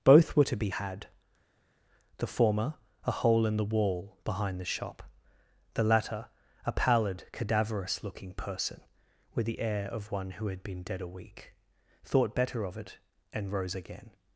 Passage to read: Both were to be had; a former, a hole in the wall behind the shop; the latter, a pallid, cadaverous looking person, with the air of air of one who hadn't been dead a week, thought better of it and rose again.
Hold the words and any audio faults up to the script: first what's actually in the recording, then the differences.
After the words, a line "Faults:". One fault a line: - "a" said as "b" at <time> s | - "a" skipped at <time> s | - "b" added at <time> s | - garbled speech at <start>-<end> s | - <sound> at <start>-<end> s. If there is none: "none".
Both were to be had; the former, a hole in the wall behind the shop; the latter, a pallid, cadaverous looking person, with the air of one who had been dead a week, thought better of it and rose again.
Faults:
- "a" said as "the" at 2.2 s
- "air of" skipped at 10.1 s
- "hadn't" said as "had" at 10.5 s